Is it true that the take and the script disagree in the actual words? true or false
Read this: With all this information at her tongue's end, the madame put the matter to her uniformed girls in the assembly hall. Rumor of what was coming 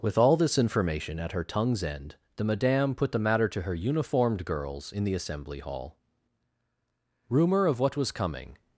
false